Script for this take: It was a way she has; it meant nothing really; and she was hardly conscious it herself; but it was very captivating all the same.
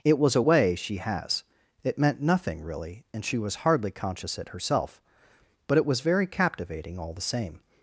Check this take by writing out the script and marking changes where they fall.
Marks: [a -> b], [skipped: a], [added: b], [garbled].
It was a way she has; it meant nothing really; and she was hardly conscious it herself; but it was very captivating all the same.